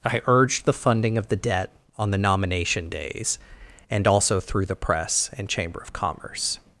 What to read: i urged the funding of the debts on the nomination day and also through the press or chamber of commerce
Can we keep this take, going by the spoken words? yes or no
no